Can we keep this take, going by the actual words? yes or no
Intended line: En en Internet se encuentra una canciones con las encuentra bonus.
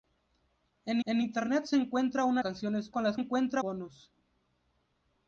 yes